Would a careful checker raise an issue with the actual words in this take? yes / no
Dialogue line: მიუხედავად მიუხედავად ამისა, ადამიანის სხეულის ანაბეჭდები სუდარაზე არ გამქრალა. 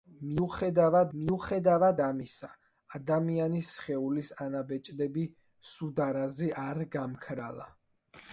no